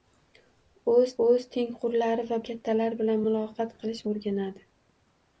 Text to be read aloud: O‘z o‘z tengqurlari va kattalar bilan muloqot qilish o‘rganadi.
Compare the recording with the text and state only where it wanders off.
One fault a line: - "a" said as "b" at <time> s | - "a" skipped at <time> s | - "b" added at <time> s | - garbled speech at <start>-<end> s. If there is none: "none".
none